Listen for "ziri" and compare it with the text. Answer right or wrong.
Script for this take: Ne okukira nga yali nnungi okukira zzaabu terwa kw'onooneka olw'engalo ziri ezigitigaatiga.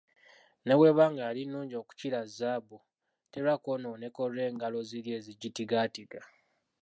right